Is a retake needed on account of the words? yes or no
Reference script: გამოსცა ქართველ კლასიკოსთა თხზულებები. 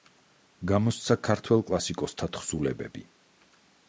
no